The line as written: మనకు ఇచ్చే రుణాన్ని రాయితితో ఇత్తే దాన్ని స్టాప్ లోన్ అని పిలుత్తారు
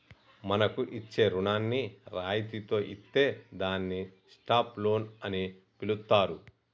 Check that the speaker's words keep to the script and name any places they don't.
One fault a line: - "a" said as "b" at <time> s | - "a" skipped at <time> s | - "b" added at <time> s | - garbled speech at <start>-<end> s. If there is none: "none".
none